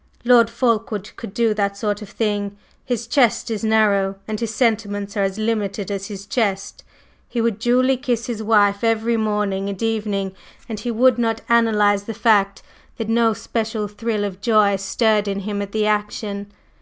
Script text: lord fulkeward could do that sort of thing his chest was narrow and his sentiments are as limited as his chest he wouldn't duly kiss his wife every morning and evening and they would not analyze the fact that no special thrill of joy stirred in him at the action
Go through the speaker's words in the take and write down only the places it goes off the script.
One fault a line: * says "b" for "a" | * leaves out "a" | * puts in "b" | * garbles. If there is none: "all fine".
* says "is" for "was"
* says "would" for "wouldn't"
* says "he" for "they"